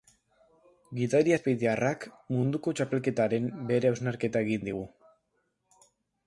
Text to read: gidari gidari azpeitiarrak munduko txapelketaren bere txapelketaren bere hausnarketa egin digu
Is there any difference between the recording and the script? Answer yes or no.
yes